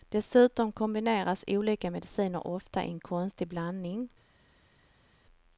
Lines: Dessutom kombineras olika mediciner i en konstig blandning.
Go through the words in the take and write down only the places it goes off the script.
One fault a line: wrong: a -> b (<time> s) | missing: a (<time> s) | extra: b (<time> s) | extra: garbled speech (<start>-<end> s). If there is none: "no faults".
extra: ofta (2.5 s)